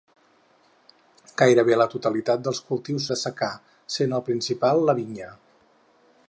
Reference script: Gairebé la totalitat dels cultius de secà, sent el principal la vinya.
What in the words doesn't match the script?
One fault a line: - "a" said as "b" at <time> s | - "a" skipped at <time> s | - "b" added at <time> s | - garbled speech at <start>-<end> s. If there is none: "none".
none